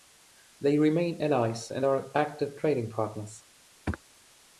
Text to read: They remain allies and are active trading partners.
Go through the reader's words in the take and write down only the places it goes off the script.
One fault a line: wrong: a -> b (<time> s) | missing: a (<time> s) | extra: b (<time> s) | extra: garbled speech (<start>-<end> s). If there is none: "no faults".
no faults